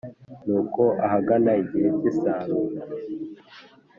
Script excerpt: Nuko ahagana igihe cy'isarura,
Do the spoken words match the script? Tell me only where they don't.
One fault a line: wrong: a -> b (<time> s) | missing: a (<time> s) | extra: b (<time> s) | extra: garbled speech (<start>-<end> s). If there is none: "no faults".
no faults